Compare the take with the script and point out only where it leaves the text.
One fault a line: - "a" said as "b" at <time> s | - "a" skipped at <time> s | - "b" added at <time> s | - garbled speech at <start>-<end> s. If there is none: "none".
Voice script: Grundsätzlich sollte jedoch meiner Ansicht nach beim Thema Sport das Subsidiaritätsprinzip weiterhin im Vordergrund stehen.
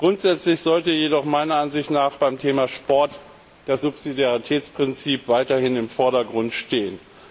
none